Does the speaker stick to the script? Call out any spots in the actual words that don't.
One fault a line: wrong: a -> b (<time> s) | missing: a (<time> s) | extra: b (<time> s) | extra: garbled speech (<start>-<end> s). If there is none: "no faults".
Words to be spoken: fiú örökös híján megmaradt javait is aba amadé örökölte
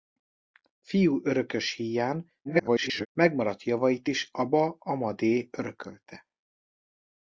extra: garbled speech (2.4-3.1 s)